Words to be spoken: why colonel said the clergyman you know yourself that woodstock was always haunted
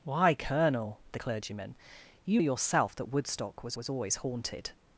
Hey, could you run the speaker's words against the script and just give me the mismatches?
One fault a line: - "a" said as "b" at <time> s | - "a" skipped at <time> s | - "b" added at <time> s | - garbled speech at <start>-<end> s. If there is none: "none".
- "said" skipped at 1.0 s
- "know" skipped at 2.4 s
- "was" added at 3.8 s